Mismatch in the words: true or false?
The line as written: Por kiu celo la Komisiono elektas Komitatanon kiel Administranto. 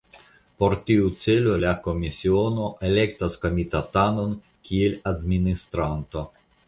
true